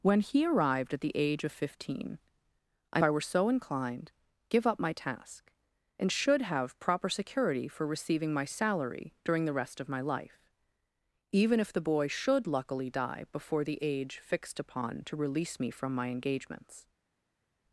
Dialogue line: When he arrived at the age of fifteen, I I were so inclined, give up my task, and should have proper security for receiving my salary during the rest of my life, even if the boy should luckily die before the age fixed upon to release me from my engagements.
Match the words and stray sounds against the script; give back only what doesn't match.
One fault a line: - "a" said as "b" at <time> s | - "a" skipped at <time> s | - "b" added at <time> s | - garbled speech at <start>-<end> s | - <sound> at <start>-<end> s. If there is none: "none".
none